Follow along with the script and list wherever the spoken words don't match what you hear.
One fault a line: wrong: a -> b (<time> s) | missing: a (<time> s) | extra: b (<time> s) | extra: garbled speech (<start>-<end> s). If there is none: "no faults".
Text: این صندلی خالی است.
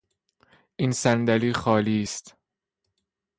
no faults